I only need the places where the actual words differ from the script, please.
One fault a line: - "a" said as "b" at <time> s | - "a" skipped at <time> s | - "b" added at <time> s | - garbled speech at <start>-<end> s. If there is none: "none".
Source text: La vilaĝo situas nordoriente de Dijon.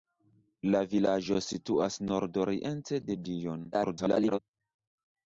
- garbled speech at 3.7-4.4 s